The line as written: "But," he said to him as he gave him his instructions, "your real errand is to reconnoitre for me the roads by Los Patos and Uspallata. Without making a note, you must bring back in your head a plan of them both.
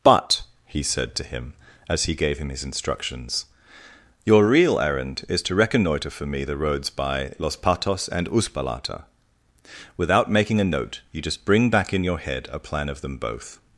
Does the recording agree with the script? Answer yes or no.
no